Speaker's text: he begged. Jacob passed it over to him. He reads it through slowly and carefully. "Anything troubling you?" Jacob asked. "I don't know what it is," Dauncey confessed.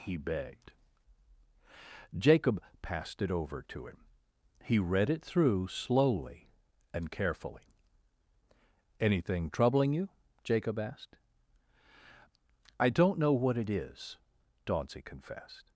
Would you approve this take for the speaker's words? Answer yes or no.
no